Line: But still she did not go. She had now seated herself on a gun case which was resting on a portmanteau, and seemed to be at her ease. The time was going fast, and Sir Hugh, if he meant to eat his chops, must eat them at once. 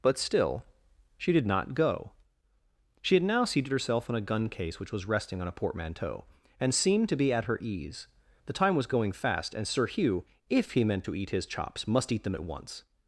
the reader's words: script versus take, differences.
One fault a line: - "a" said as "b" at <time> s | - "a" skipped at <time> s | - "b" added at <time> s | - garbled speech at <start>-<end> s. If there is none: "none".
none